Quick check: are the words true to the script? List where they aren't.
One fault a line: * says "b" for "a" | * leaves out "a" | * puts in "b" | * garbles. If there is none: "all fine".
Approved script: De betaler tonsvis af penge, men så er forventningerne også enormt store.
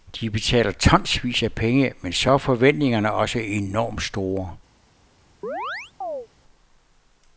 all fine